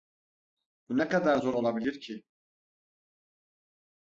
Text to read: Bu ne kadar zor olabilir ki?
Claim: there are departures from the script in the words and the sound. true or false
false